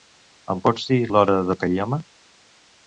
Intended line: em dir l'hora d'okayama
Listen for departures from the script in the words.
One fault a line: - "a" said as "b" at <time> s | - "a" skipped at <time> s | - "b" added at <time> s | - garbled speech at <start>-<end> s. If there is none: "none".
- "pots" added at 0.7 s